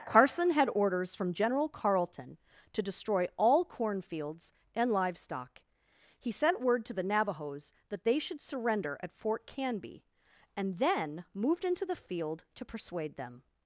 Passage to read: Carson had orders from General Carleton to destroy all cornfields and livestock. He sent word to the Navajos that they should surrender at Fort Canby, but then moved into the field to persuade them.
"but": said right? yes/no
no